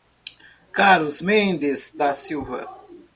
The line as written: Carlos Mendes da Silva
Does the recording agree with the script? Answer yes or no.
yes